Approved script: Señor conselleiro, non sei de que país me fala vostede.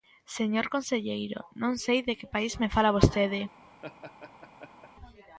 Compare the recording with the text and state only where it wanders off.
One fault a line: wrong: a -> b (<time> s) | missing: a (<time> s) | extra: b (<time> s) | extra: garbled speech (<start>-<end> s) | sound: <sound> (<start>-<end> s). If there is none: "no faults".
sound: laugh (3.8-4.9 s)